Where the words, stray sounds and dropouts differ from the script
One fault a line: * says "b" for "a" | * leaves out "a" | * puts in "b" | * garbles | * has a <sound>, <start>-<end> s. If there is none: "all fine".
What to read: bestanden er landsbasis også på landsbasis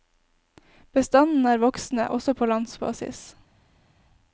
* says "voksende" for "landsbasis"